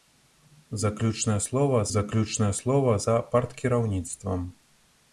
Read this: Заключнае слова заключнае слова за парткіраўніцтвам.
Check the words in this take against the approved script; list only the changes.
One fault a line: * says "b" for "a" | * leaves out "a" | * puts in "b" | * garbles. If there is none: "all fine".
all fine